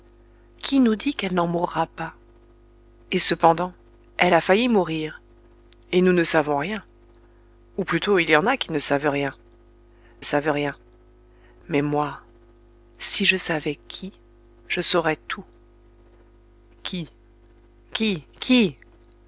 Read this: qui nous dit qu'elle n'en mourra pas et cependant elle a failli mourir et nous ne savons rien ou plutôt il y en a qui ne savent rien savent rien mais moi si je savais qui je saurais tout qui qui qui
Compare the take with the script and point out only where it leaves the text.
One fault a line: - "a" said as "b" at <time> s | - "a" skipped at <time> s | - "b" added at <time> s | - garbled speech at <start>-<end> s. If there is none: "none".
none